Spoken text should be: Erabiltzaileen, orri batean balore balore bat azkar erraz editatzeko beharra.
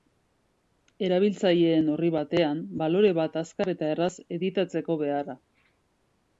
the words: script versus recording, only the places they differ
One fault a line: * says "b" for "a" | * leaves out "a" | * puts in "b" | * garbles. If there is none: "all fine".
* leaves out "balore"
* puts in "eta"